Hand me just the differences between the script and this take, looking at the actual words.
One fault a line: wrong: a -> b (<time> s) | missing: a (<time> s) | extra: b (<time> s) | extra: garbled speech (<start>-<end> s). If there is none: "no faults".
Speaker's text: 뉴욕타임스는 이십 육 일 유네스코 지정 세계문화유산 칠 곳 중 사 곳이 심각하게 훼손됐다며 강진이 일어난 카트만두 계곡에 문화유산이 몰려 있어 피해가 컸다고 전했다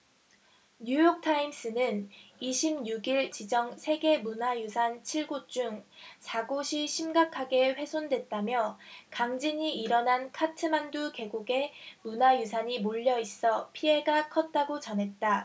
missing: 유네스코 (3.4 s)